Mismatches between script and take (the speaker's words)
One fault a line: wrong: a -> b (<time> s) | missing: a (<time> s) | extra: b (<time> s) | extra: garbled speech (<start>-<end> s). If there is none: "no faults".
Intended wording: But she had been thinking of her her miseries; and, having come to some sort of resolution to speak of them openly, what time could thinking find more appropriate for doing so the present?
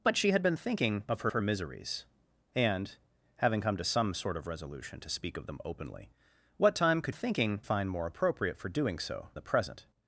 no faults